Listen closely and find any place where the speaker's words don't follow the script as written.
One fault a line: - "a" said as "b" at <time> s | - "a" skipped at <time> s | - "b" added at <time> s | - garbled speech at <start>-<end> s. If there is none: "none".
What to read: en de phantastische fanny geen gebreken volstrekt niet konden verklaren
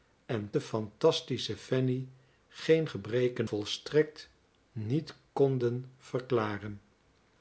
none